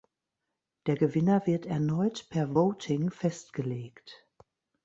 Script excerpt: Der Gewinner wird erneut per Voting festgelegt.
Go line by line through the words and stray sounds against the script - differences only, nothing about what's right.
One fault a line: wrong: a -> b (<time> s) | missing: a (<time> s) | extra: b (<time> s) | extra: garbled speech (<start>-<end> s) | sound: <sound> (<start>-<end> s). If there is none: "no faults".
no faults